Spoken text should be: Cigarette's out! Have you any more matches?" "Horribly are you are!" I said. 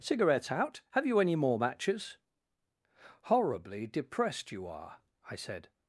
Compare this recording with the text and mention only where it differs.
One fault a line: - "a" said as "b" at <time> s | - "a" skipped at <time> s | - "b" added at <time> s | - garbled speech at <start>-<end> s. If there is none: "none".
- "are" said as "depressed" at 3.9 s